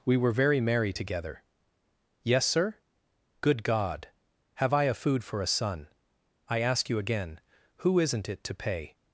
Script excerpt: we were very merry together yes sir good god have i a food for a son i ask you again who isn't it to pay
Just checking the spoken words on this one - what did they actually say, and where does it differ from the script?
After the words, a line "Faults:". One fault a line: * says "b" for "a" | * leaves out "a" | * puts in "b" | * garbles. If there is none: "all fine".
we were very merry together yes sir good god have i a food for a son i ask you again who isn't it to pay
Faults:
all fine